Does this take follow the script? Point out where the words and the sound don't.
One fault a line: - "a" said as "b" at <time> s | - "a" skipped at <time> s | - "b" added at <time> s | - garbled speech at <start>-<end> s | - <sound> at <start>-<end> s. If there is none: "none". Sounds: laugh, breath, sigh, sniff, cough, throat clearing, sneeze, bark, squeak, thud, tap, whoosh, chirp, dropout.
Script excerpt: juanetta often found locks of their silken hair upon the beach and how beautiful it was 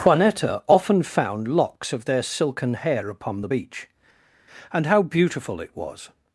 none